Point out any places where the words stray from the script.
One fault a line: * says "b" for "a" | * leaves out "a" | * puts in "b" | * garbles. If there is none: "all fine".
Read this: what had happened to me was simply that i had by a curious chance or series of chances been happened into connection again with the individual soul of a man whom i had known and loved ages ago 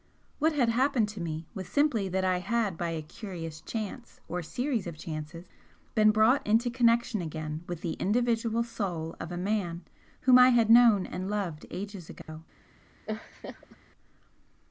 * says "brought" for "happened"